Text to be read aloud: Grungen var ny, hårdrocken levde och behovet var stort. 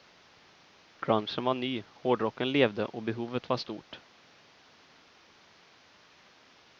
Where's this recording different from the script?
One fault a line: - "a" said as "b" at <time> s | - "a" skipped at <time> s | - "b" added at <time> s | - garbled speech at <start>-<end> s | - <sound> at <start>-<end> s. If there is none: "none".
none